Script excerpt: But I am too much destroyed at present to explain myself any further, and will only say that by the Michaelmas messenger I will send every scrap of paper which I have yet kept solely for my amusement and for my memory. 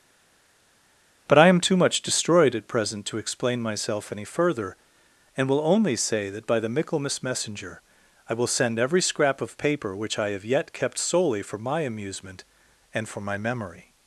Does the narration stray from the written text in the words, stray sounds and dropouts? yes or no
no